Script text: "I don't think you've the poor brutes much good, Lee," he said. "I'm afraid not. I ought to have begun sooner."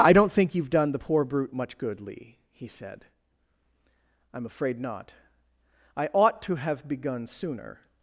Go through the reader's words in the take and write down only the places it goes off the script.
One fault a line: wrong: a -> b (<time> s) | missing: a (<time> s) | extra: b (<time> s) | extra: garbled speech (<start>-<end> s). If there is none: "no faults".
extra: done (0.7 s)
wrong: brutes -> brute (1.2 s)